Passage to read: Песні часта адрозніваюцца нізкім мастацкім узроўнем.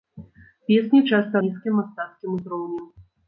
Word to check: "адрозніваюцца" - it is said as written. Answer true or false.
false